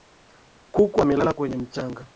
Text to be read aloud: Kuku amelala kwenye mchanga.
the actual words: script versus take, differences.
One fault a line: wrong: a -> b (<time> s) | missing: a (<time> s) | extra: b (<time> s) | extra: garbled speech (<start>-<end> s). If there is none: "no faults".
no faults